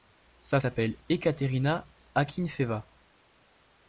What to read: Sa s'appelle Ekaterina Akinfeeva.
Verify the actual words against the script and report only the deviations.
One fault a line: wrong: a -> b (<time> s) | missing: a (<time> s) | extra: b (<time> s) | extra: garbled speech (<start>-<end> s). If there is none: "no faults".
no faults